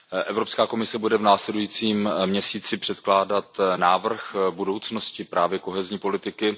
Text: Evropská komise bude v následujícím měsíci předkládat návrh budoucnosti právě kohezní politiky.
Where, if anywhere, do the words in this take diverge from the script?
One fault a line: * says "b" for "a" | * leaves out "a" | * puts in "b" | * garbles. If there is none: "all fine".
all fine